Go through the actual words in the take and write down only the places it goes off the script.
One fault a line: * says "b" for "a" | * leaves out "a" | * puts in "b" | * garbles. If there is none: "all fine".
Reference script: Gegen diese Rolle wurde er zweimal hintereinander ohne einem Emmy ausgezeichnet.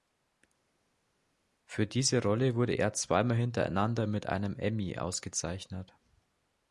* says "Für" for "Gegen"
* says "mit" for "ohne"